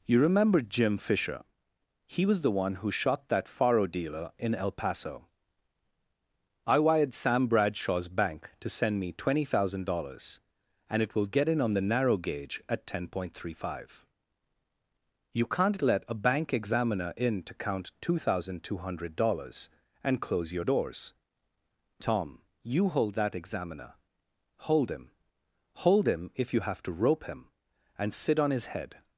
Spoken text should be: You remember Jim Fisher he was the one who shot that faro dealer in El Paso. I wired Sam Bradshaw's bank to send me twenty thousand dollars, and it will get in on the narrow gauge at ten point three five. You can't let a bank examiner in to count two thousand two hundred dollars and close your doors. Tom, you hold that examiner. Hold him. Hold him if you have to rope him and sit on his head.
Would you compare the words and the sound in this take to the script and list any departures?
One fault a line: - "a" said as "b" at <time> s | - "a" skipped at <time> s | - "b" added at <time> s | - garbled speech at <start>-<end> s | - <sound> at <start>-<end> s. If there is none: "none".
none